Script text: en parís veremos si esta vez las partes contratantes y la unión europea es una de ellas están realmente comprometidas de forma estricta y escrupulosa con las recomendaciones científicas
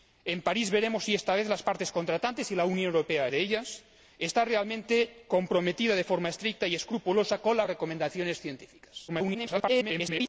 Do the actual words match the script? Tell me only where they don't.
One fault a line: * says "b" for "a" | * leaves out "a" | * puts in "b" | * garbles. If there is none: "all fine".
* leaves out "es una"
* garbles